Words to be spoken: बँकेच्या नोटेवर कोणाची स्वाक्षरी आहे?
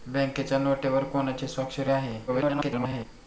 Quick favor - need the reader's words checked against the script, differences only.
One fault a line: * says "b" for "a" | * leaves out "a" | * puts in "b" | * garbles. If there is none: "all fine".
* garbles